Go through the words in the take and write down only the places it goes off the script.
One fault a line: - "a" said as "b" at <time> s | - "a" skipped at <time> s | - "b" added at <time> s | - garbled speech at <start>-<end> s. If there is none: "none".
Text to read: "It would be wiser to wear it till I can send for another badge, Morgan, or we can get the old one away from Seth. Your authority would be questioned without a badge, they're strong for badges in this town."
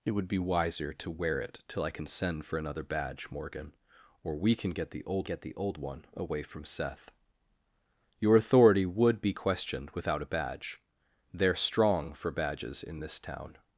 - "get the old" added at 5.2 s